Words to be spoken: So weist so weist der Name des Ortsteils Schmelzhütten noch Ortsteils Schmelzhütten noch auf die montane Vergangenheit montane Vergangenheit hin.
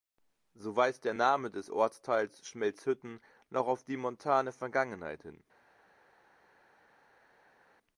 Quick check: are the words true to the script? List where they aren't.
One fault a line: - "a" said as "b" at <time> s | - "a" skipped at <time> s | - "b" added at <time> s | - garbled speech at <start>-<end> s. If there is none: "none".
- "so weist" skipped at 1.1 s
- "Ortsteils Schmelzhütten noch" skipped at 3.7 s
- "montane Vergangenheit" skipped at 5.2 s